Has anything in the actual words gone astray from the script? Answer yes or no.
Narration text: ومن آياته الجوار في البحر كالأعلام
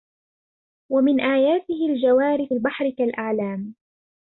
no